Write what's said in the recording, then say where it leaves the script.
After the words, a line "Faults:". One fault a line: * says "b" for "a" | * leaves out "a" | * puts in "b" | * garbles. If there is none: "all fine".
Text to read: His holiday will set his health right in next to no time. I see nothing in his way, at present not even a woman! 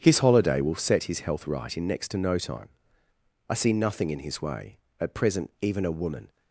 His holiday will set his health right in next to no time. I see nothing in his way, at present even a woman!
Faults:
* leaves out "not"